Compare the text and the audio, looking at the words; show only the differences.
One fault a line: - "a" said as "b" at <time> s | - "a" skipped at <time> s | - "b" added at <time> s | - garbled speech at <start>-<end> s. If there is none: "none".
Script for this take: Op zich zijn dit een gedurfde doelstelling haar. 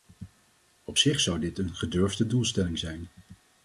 - "zijn" said as "zou" at 1.2 s
- "haar" said as "zijn" at 2.8 s